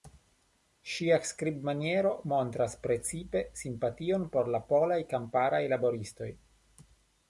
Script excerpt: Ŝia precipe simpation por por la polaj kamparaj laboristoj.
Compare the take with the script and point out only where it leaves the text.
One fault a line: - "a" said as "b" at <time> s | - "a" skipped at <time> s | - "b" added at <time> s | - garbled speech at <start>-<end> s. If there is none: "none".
- "skribmaniero montras" added at 1.3 s
- "por" skipped at 4.5 s